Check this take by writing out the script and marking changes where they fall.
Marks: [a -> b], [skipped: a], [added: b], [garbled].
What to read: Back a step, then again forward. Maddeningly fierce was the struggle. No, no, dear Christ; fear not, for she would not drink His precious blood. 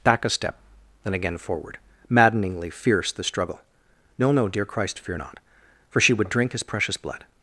Back a step, then again forward. Maddeningly fierce [skipped: was] the struggle. No, no, dear Christ; fear not, for she would [skipped: not] drink His precious blood.